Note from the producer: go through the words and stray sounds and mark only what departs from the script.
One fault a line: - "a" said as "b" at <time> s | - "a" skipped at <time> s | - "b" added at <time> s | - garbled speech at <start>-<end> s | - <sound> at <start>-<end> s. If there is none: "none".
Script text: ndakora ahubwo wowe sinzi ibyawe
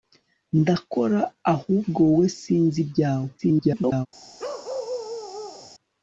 - garbled speech at 3.4-4.1 s
- bark at 4.4-5.7 s